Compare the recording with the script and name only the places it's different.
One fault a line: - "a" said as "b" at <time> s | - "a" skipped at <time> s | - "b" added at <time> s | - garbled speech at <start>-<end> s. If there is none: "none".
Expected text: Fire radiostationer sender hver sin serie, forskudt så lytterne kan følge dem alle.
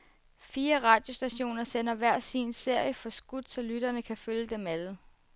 none